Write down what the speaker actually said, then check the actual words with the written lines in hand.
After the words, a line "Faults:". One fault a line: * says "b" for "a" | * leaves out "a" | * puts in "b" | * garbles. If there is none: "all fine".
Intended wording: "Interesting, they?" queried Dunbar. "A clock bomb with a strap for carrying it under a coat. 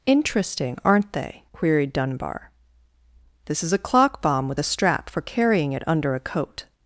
"Interesting, aren't they?" queried Dunbar. "This is a clock bomb with a strap for carrying it under a coat.
Faults:
* puts in "aren't"
* puts in "This is"